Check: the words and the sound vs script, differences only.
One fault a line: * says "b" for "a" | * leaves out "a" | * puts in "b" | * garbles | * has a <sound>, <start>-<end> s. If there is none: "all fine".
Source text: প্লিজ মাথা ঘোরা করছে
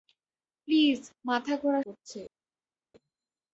all fine